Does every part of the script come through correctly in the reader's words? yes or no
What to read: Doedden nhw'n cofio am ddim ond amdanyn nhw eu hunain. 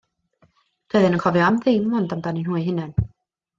yes